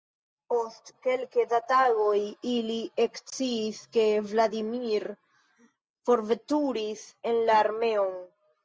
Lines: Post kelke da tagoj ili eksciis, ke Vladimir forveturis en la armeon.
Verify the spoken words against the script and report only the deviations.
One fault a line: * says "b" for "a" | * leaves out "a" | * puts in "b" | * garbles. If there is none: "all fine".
all fine